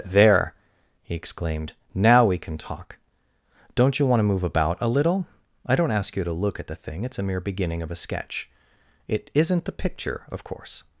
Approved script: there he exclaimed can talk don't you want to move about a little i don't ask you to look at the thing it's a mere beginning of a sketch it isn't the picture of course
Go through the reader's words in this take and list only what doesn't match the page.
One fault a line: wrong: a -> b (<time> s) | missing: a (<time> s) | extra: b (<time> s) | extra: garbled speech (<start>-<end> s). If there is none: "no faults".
extra: now we (1.9 s)